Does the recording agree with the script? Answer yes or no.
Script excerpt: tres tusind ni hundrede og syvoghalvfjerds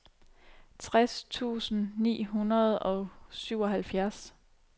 yes